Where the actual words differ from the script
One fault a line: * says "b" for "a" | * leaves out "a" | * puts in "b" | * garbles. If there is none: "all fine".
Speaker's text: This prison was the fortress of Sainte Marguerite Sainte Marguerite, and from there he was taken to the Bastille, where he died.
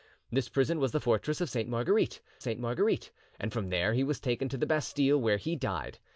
all fine